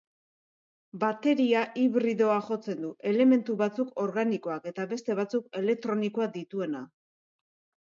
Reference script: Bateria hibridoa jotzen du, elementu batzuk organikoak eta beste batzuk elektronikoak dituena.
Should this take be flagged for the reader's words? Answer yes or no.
no